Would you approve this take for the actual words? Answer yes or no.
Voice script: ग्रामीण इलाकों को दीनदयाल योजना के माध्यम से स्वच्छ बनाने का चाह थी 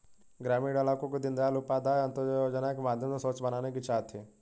no